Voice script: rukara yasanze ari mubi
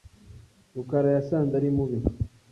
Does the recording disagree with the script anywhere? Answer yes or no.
no